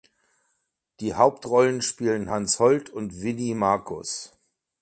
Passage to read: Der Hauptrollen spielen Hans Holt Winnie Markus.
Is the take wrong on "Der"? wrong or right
wrong